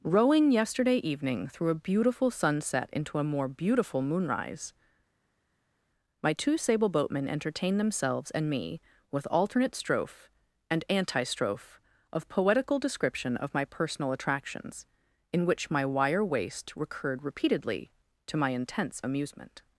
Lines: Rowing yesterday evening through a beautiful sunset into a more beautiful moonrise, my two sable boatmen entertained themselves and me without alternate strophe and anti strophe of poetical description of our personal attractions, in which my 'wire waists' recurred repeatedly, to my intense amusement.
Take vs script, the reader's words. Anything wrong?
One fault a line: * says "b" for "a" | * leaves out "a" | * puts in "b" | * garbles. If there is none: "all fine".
* says "with" for "without"
* says "my" for "our"
* says "waist" for "waists"